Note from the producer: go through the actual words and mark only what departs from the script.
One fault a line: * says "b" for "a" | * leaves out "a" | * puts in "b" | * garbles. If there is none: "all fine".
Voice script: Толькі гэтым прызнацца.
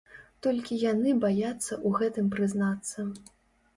* puts in "яны баяцца ў"